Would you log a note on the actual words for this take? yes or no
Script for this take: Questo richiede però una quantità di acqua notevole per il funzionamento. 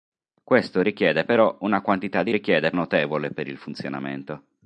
yes